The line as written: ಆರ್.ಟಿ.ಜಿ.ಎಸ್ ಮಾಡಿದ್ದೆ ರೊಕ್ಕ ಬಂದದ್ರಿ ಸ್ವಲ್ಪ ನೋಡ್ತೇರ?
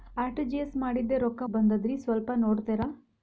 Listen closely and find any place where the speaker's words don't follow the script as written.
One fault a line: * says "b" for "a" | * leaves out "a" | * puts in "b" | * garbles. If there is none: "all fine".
all fine